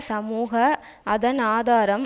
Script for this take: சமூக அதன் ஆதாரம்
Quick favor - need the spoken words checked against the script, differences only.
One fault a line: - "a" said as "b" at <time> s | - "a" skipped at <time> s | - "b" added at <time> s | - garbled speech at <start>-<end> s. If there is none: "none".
none